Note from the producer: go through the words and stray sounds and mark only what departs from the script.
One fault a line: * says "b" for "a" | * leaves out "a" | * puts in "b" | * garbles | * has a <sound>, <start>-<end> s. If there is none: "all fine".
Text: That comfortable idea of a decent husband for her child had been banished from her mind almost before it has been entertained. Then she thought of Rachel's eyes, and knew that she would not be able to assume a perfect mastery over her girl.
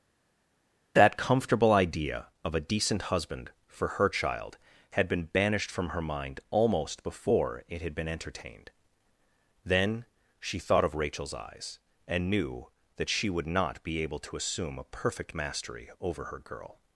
* says "had" for "has"